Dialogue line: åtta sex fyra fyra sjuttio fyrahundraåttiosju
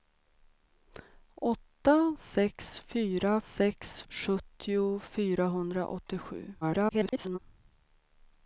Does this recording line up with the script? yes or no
no